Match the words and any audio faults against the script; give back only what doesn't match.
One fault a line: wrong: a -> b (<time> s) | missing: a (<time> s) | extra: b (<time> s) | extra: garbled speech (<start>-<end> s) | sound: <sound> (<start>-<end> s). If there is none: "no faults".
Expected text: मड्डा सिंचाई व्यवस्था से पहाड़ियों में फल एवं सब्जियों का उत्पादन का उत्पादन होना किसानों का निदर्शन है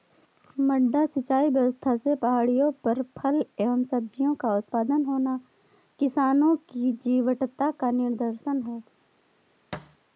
wrong: में -> पर (2.8 s)
wrong: का उत्पादन होना किसानों -> होना किसानों की जीवटता (5.1 s)
sound: thud (9.7-10.0 s)